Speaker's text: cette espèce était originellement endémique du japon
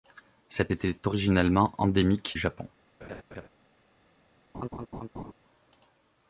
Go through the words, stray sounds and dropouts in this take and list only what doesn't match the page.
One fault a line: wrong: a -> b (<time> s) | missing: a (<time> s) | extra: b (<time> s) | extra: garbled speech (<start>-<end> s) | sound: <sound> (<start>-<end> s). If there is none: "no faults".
missing: espèce (0.7 s)
missing: du (2.4 s)
sound: laugh (3.0-3.5 s)
sound: laugh (4.5-5.3 s)